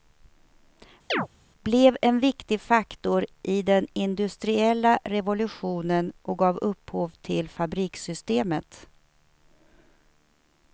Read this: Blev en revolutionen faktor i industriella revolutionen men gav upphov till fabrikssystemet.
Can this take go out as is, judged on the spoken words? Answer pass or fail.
fail